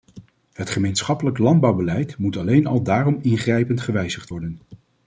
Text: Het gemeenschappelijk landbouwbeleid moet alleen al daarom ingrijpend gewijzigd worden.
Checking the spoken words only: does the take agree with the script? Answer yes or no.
yes